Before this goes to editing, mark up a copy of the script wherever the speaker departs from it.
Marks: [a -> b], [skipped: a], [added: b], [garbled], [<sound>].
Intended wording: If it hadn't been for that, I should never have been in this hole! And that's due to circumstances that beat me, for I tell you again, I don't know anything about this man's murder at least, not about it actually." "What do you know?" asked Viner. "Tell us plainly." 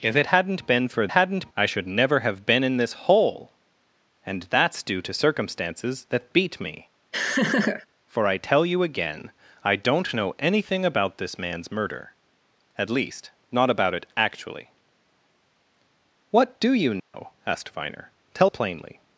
If it hadn't been for [that, -> hadn't] I should never have been in this hole! And that's due to circumstances that beat me, [laugh] for I tell you again, I don't know anything about this man's murder at least, not about it actually." "What do you know?" [dropout] asked Viner. "Tell [skipped: us] plainly."